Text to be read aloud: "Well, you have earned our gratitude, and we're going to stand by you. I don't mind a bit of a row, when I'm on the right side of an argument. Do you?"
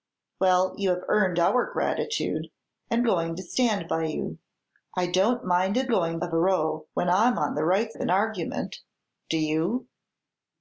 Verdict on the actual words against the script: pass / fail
fail